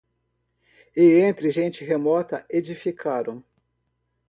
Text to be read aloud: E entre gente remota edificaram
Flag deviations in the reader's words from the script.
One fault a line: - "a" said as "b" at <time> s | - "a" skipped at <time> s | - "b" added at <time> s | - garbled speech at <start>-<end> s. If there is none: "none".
none